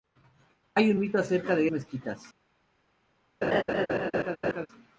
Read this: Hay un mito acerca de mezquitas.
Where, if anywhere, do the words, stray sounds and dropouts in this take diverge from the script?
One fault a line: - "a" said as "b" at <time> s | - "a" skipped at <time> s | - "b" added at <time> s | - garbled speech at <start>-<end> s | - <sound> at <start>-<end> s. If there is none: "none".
- laugh at 3.4-4.7 s